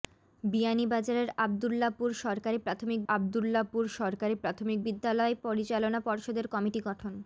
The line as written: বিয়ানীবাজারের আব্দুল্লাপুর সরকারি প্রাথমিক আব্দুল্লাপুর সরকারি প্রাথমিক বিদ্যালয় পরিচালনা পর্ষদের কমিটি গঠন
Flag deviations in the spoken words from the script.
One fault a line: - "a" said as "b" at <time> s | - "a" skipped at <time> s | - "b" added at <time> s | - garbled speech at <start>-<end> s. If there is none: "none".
none